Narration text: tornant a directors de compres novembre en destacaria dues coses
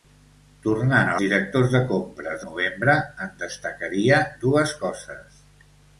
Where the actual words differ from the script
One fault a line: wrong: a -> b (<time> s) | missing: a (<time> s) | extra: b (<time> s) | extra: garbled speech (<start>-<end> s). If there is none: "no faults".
no faults